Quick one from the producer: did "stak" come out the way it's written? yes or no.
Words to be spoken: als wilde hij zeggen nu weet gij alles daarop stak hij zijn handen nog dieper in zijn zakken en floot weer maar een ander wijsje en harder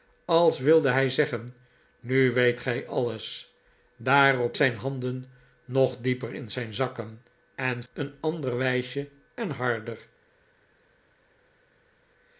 no